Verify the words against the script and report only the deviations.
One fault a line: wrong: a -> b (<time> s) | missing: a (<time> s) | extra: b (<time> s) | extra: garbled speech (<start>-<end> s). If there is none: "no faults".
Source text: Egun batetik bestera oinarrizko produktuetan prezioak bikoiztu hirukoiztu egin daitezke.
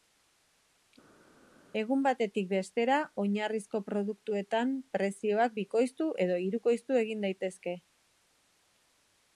extra: edo (6.3 s)